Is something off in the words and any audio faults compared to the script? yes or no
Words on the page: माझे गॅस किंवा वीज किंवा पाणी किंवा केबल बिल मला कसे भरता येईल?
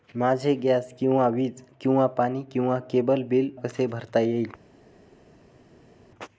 yes